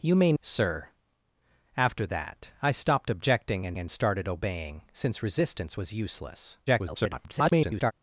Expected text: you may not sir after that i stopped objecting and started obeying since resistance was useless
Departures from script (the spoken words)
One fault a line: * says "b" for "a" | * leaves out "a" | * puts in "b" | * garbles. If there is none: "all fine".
* leaves out "not"
* puts in "and"
* garbles